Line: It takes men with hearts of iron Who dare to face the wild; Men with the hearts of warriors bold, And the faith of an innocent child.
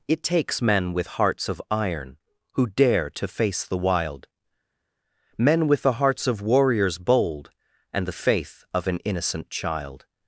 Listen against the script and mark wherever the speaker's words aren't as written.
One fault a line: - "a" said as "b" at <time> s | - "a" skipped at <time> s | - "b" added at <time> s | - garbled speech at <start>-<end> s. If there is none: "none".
none